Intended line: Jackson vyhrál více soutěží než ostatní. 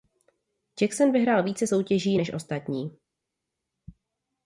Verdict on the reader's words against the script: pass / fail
pass